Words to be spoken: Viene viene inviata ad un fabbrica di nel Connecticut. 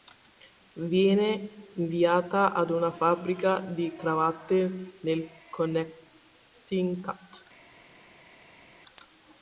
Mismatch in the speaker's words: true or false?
true